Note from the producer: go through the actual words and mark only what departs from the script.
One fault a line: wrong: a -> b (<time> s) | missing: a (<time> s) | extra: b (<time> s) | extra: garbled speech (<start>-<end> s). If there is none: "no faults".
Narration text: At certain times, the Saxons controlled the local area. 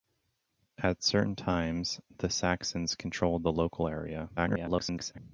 extra: garbled speech (4.4-5.2 s)